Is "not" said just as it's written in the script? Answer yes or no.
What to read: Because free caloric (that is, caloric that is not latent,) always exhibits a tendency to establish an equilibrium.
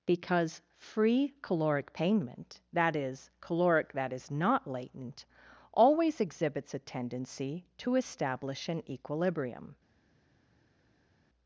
yes